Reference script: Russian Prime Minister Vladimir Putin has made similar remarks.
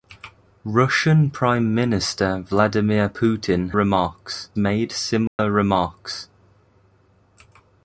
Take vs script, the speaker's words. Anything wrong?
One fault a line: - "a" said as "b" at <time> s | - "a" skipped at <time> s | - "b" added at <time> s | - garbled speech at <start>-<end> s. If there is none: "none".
- "has" said as "remarks" at 3.7 s